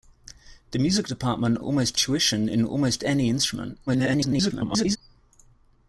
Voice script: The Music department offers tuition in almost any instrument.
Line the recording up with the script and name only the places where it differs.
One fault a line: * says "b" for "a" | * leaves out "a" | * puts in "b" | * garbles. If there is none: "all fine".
* says "almost" for "offers"
* garbles